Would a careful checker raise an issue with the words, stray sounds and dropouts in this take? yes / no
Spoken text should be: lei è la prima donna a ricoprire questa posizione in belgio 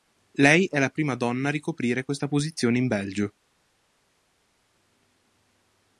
no